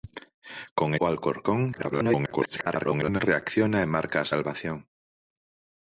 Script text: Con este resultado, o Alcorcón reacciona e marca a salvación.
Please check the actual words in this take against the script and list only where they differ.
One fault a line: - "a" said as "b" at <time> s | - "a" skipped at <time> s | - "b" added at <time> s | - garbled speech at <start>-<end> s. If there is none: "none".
- "este resultado" skipped at 0.9 s
- garbled speech at 1.7-3.2 s